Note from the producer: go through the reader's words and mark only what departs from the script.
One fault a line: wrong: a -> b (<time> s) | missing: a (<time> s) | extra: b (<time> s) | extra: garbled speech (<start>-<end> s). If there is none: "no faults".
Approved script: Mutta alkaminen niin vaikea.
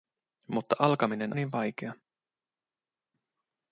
no faults